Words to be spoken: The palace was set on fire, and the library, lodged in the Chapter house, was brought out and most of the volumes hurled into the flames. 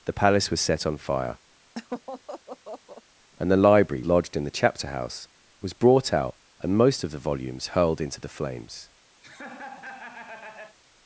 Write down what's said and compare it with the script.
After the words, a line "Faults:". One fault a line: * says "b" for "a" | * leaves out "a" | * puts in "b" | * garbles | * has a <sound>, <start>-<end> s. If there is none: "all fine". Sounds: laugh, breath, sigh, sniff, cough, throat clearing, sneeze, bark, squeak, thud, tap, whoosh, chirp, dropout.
The palace was set on fire, and the library, lodged in the Chapter house, was brought out and most of the volumes hurled into the flames.
Faults:
* has a laugh, 1.8-3.0 s
* has a laugh, 9.2-10.8 s